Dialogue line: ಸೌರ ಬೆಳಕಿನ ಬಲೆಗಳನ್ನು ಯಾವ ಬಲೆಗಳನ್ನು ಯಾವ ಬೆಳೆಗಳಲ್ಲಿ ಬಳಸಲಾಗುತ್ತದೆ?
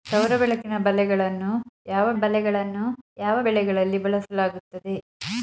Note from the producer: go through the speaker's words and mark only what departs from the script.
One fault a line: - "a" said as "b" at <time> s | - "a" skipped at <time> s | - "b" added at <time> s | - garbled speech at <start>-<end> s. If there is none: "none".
none